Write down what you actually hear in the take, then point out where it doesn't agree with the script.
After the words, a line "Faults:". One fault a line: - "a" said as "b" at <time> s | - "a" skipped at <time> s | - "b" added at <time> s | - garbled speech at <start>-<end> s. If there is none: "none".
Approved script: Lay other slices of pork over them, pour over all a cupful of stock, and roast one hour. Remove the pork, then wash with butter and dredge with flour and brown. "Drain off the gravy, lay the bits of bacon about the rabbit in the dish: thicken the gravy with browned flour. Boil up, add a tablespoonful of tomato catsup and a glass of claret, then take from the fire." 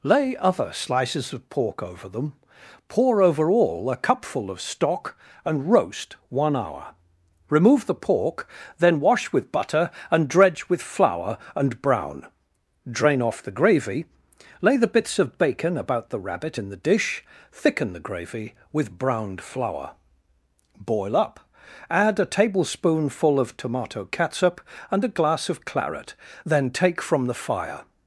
Lay other slices of pork over them, pour over all a cupful of stock, and roast one hour. Remove the pork, then wash with butter and dredge with flour and brown. "Drain off the gravy, lay the bits of bacon about the rabbit in the dish: thicken the gravy with browned flour. Boil up, add a tablespoonful of tomato catsup and a glass of claret, then take from the fire."
Faults:
none